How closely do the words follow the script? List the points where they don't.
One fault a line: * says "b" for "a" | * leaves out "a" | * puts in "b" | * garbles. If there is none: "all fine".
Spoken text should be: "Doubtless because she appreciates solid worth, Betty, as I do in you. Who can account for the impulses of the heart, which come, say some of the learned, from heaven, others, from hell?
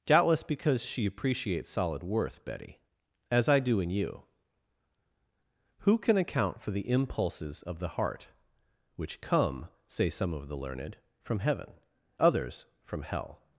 all fine